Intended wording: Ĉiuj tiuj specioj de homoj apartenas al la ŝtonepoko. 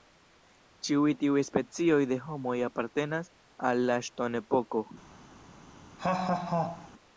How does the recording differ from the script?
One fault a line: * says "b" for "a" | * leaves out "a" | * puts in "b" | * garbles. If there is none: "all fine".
all fine